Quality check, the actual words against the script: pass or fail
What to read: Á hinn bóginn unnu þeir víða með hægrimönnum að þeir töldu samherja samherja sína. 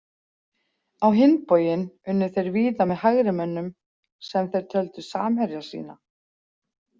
fail